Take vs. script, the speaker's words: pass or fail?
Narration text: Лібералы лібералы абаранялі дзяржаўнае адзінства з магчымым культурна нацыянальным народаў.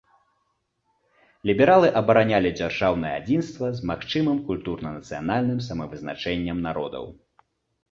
fail